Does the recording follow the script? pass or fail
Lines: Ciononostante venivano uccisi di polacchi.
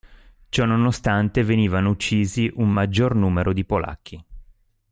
fail